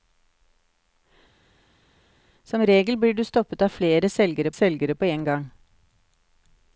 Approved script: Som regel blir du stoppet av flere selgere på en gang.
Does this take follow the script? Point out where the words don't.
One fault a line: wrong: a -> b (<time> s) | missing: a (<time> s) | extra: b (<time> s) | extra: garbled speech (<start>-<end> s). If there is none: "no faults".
extra: selgere (4.5 s)